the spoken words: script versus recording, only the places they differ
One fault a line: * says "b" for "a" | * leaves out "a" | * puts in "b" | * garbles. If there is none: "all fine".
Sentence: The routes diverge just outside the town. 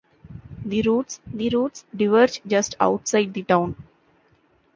* puts in "the routes"